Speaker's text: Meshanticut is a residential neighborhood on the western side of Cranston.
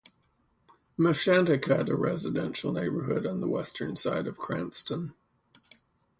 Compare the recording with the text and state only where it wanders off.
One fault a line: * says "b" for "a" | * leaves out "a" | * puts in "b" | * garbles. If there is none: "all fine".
* leaves out "is"